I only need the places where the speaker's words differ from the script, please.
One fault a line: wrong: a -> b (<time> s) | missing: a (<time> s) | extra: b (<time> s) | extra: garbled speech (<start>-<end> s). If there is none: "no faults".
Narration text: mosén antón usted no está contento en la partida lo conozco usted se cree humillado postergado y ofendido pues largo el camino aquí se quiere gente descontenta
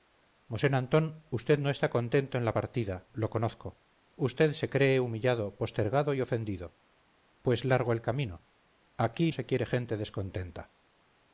no faults